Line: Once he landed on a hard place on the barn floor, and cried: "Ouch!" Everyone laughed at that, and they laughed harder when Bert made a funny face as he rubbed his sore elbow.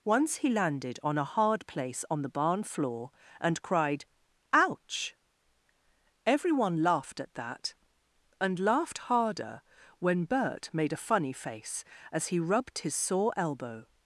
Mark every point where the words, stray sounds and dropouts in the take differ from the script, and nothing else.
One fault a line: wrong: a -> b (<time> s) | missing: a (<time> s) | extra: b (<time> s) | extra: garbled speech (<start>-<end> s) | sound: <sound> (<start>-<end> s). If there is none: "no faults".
missing: they (8.6 s)